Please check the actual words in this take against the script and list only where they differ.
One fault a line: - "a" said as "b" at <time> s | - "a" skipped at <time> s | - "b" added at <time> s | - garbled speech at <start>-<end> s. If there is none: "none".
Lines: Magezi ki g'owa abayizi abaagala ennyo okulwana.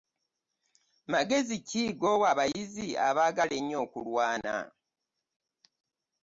none